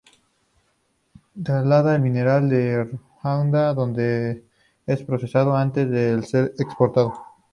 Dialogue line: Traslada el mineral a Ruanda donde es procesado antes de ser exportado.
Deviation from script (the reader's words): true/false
false